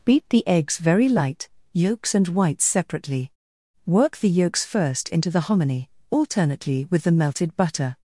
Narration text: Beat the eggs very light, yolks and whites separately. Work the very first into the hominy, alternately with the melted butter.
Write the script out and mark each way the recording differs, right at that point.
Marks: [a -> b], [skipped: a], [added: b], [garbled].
Beat the eggs very light, yolks and whites separately. Work the [very -> yolks] first into the hominy, alternately with the melted butter.